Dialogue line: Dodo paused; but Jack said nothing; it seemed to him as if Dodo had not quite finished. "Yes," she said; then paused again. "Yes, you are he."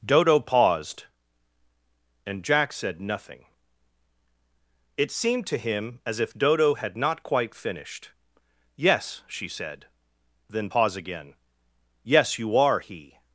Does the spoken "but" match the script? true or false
false